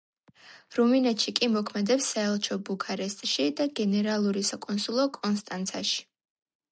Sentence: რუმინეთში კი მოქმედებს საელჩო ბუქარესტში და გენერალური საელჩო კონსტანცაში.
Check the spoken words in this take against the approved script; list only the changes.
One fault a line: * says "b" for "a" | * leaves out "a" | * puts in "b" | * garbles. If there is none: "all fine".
* says "საკონსულო" for "საელჩო"